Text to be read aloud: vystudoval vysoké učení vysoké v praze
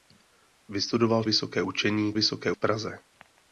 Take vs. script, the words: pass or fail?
pass